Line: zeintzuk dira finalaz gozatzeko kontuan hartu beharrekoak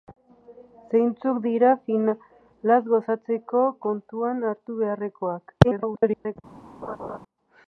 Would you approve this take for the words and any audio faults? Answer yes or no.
no